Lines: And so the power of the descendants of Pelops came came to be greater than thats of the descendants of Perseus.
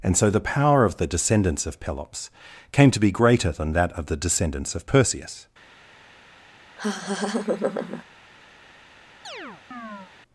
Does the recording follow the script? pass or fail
fail